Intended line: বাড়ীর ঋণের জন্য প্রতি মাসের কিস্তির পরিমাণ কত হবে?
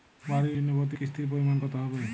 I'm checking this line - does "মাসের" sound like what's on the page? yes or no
no